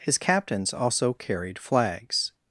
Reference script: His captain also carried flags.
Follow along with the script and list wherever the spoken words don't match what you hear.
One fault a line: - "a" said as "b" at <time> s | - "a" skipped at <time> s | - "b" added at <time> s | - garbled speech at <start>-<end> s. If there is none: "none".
- "captain" said as "captains" at 0.2 s